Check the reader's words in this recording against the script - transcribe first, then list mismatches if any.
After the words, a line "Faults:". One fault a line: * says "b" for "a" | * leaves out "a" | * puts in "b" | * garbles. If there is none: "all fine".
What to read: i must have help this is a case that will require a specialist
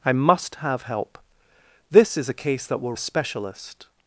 i must have help this is a case that will a specialist
Faults:
* leaves out "require"